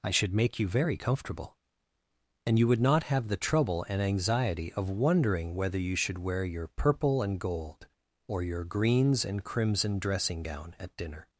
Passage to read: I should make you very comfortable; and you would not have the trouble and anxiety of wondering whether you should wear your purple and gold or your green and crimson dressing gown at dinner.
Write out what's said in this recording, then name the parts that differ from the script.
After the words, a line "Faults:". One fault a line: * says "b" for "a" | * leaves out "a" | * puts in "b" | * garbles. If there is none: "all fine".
I should make you very comfortable; and you would not have the trouble and anxiety of wondering whether you should wear your purple and gold or your greens and crimson dressing gown at dinner.
Faults:
* says "greens" for "green"